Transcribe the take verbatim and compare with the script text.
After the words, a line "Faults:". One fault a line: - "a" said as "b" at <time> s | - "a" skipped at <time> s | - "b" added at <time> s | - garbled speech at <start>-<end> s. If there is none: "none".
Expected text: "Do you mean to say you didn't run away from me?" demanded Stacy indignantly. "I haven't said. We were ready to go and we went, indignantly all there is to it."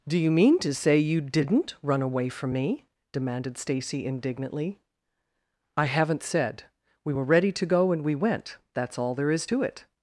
"Do you mean to say you didn't run away from me?" demanded Stacy indignantly. "I haven't said. We were ready to go and we went, that's all there is to it."
Faults:
- "indignantly" said as "that's" at 8.7 s